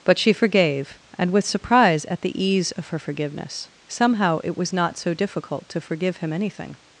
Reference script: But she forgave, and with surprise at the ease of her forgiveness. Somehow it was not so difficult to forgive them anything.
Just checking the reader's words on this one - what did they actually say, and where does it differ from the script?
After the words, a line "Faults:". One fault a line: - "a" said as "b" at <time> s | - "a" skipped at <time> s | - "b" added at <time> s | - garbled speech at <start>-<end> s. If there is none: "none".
But she forgave, and with surprise at the ease of her forgiveness. Somehow it was not so difficult to forgive him anything.
Faults:
- "them" said as "him" at 6.2 s